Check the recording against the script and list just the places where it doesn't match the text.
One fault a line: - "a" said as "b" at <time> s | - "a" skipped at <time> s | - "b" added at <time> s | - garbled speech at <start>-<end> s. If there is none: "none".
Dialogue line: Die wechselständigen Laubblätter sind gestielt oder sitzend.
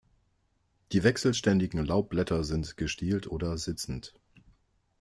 none